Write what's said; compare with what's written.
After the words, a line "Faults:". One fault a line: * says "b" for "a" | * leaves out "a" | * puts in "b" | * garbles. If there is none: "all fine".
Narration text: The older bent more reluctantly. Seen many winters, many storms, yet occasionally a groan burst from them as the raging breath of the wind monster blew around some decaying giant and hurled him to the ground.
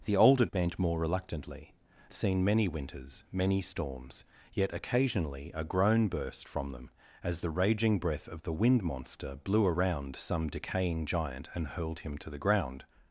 The older bent more reluctantly. Seen many winters, many storms, yet occasionally a groan burst from them as the raging breath of the wind monster blew around some decaying giant and hurled him to the ground.
Faults:
all fine